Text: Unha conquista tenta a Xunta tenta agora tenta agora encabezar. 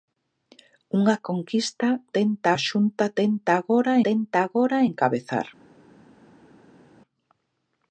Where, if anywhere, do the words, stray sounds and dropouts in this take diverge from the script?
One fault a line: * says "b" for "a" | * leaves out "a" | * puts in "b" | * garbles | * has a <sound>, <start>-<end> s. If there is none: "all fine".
all fine